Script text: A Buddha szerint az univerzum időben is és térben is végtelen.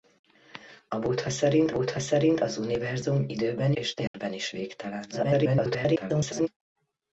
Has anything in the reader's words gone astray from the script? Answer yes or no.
yes